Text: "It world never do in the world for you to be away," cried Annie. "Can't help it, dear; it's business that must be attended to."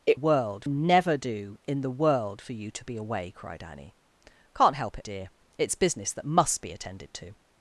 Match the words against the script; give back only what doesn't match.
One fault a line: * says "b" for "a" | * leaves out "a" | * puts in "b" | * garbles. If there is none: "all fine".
all fine